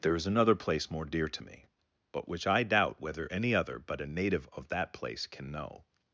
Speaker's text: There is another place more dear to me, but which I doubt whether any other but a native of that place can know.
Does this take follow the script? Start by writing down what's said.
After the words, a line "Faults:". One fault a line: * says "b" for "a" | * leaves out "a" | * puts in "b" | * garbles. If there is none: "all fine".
There is another place more dear to me, but which I doubt whether any other but a native of that place can know.
Faults:
all fine